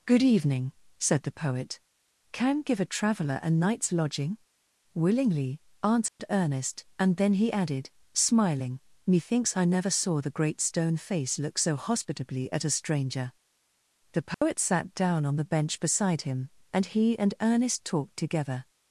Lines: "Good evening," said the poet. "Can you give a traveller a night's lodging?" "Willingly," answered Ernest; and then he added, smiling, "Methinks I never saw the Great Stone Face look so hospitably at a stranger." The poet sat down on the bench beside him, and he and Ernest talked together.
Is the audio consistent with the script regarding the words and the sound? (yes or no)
no